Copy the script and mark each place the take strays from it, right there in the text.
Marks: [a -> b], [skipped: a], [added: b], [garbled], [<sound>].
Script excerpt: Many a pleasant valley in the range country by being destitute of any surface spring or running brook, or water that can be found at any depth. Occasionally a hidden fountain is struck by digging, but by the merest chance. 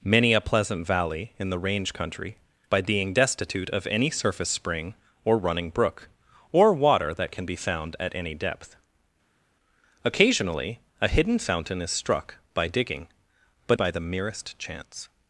Many a pleasant valley in the range country by being destitute of any surface spring or running brook, or water that can be found at any depth. Occasionally a hidden fountain is struck by digging, but by the merest chance.